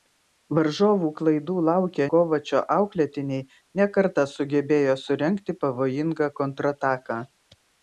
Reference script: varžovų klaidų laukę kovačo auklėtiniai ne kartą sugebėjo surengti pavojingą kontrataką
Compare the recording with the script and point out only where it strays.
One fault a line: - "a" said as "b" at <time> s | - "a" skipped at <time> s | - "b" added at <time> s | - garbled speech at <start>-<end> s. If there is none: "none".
none